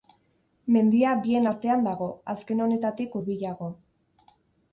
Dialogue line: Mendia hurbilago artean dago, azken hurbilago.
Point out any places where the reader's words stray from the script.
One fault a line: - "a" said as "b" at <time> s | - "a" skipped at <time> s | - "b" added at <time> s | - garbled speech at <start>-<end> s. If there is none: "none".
- "hurbilago" said as "bien" at 1.2 s
- "honetatik" added at 2.7 s